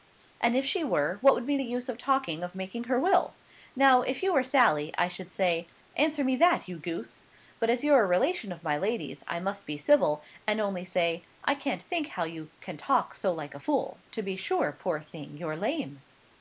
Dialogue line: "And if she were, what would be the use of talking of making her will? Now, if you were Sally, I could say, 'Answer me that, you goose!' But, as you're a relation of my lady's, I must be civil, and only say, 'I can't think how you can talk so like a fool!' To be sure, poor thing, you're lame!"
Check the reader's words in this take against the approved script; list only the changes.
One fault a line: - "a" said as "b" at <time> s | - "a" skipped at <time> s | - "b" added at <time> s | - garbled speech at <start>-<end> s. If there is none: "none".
- "could" said as "should" at 5.1 s